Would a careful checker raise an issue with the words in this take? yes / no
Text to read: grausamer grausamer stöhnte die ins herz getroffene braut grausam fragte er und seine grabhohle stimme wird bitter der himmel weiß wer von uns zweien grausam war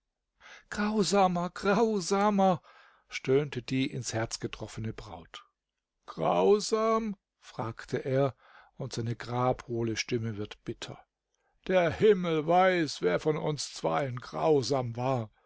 no